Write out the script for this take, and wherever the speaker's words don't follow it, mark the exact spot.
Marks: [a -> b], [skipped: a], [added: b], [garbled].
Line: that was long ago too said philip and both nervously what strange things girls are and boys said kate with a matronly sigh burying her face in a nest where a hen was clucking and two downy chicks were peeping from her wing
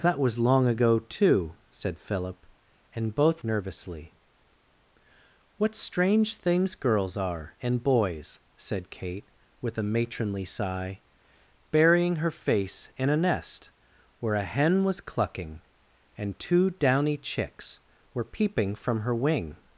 that was long ago too said philip and both nervously what strange things girls are and boys said kate with a matronly sigh burying her face in a nest where a hen was clucking and two downy chicks were peeping from her wing